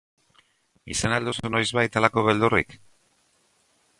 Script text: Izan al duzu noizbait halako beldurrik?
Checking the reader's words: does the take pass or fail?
pass